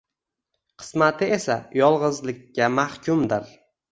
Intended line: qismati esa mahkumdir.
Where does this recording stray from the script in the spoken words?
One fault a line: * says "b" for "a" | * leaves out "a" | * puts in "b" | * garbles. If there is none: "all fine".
* puts in "yolg‘izlikka"